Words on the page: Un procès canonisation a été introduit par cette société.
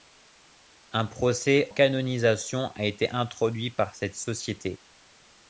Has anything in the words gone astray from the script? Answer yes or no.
no